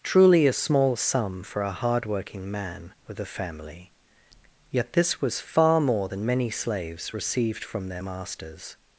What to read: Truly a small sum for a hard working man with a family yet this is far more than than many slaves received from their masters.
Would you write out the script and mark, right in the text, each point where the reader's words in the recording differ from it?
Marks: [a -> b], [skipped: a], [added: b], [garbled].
Truly a small sum for a hard working man with a family yet this [is -> was] far more than [skipped: than] many slaves received from their masters.